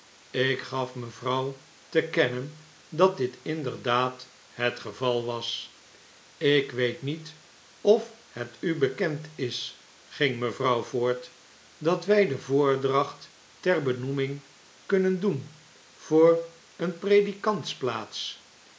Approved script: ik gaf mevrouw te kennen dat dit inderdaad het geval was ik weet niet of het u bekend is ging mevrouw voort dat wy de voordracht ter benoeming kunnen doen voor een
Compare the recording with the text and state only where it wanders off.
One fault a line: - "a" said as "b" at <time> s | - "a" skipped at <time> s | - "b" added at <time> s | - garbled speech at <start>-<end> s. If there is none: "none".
none